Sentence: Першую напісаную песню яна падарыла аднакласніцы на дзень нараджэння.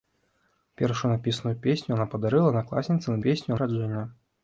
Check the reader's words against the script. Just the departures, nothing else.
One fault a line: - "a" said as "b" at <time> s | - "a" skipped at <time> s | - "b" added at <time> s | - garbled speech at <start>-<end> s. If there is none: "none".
- "дзень" said as "песню" at 3.3 s